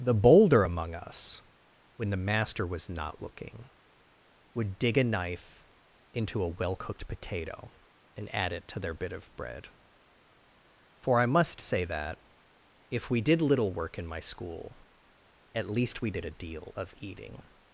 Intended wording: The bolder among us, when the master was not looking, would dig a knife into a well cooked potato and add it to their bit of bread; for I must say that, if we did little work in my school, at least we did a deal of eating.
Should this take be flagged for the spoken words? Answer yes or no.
no